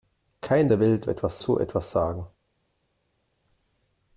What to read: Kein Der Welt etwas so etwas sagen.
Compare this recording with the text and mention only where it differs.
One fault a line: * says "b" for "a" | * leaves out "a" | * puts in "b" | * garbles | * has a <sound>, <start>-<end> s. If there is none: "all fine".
all fine